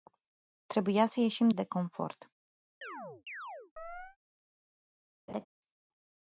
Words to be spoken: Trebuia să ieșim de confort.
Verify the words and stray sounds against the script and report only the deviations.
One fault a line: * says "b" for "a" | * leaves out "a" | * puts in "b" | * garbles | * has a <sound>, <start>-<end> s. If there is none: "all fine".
* has a chirp, 2.8-4.2 s
* has a laugh, 5.3-5.5 s